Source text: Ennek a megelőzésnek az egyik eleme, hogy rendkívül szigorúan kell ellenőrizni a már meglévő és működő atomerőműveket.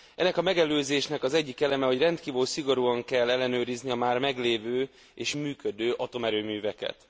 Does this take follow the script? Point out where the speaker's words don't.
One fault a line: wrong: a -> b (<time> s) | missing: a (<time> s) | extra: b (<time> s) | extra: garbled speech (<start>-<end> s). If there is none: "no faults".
no faults